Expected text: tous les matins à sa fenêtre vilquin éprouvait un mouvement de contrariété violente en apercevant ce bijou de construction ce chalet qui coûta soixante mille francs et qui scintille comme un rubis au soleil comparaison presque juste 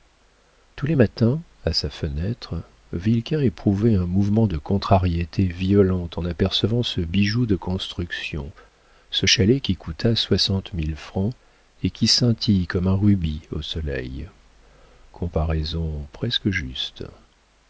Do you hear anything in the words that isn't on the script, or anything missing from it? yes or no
no